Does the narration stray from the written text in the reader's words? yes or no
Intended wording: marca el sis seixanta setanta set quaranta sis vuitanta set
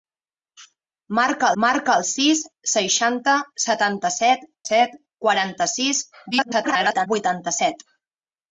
yes